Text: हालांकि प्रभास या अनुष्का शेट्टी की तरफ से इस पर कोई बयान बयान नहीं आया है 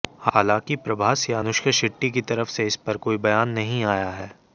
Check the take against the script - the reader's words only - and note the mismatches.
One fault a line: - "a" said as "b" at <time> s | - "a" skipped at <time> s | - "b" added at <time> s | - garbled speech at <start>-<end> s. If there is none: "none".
- "बयान" skipped at 3.5 s